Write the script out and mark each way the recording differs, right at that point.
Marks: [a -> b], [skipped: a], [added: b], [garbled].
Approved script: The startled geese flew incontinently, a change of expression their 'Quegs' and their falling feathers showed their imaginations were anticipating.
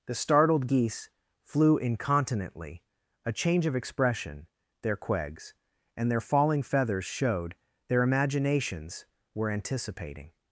The startled geese flew incontinently, a change of expression their 'Quegs' and their falling feathers showed their imaginations were anticipating.